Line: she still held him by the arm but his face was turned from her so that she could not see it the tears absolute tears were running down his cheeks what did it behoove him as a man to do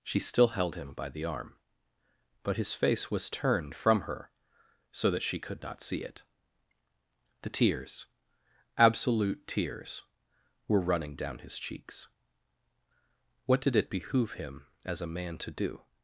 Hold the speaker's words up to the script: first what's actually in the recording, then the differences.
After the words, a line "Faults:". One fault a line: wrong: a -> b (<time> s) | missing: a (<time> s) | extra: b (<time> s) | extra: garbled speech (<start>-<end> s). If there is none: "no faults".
she still held him by the arm but his face was turned from her so that she could not see it the tears absolute tears were running down his cheeks what did it behoove him as a man to do
Faults:
no faults